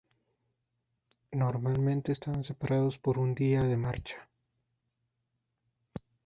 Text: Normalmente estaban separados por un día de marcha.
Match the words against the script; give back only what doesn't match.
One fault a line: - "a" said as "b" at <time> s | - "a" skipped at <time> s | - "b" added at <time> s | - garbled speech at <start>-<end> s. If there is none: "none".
none